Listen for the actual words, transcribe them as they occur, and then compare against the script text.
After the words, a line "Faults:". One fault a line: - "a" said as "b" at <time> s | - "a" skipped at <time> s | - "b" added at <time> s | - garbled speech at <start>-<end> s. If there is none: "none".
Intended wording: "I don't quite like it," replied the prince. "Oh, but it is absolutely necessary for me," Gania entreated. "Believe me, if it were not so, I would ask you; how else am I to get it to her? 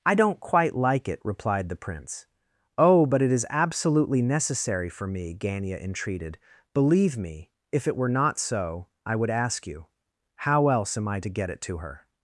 "I don't quite like it," replied the prince. "Oh, but it is absolutely necessary for me," Gania entreated. "Believe me, if it were not so, I would ask you; how else am I to get it to her?
Faults:
none